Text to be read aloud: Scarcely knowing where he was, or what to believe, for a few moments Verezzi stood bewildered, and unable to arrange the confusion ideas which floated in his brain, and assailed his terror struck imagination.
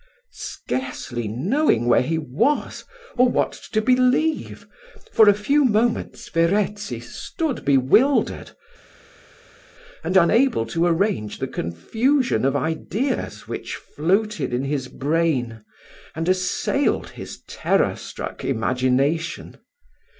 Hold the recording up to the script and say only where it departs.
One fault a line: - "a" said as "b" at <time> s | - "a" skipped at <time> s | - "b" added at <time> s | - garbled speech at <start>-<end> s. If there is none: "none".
- "of" added at 12.4 s